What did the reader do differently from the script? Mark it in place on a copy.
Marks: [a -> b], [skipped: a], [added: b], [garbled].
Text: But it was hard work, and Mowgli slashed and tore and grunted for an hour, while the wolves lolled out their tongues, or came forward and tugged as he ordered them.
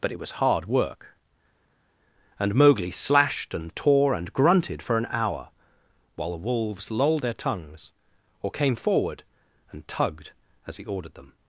But it was hard work, and Mowgli slashed and tore and grunted for an hour, while the wolves lolled [skipped: out] their tongues, or came forward and tugged as he ordered them.